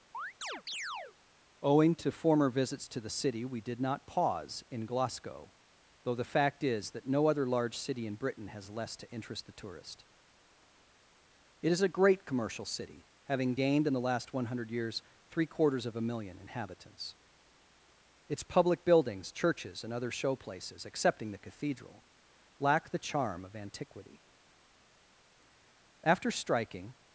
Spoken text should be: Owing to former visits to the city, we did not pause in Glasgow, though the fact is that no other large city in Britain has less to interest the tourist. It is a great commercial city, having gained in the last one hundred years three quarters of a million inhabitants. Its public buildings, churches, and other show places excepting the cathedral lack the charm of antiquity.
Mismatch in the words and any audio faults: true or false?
true